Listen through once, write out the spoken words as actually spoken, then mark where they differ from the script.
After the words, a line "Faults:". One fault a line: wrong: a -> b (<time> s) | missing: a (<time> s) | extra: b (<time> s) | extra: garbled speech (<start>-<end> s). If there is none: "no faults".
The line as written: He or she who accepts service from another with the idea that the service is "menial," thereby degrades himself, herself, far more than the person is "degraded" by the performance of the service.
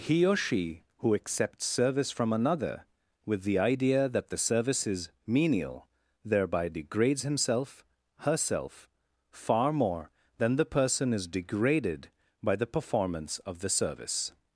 He or she who accepts service from another with the idea that the service is "menial," thereby degrades himself, herself, far more than the person is "degraded" by the performance of the service.
Faults:
no faults